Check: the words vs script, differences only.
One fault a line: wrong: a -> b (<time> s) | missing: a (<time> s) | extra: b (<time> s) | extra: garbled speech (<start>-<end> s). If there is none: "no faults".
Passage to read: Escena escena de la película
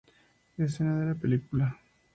missing: escena (1.0 s)